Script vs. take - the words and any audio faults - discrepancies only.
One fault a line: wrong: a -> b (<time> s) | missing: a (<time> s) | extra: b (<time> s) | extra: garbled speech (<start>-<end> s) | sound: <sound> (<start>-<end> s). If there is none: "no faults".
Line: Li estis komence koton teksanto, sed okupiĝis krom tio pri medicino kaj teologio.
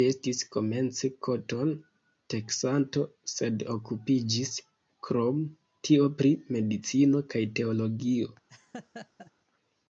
sound: laugh (8.5-9.3 s)